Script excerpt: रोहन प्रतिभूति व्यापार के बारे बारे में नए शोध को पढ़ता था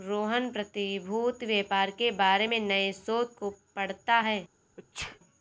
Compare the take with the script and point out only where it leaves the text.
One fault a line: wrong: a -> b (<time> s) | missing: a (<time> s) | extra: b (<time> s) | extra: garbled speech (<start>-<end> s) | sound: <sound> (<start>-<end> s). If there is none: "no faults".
missing: बारे (2.5 s)
wrong: था -> है (4.2 s)
sound: sneeze (4.8-5.2 s)